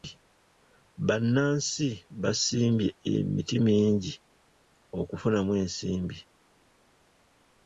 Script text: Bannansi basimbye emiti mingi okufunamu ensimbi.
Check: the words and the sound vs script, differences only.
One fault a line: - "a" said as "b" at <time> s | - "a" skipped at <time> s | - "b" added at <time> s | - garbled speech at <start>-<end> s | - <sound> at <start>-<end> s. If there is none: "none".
none